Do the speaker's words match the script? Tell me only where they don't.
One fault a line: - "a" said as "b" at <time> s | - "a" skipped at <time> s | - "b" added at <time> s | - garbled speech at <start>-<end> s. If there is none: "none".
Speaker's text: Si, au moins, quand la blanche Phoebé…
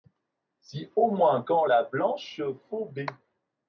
none